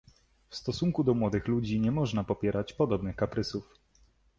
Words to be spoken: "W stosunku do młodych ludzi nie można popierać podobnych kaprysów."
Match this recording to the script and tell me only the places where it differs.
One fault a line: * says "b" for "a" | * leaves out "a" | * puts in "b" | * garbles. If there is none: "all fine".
all fine